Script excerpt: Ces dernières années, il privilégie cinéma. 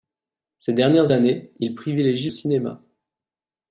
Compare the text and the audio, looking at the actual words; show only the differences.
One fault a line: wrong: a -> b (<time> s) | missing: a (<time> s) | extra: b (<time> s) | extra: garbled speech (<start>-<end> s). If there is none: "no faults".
no faults